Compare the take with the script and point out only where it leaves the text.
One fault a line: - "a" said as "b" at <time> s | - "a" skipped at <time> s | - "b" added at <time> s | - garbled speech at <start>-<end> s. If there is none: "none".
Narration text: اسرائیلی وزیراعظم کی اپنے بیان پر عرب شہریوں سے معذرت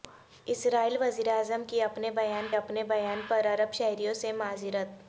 - "اپنے بیان" added at 2.5 s